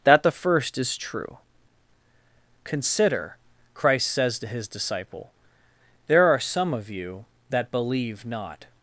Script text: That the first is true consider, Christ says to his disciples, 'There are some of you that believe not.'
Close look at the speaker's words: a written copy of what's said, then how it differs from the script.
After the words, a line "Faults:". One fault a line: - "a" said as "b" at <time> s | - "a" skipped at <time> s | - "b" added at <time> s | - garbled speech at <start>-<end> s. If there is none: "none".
That the first is true consider, Christ says to his disciple, 'There are some of you that believe not.'
Faults:
- "disciples" said as "disciple" at 4.7 s